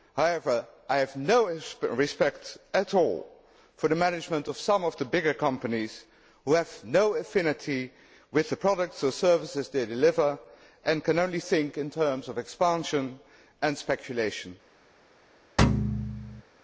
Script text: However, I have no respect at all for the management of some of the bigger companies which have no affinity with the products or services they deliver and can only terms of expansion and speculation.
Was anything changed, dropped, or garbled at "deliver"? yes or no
no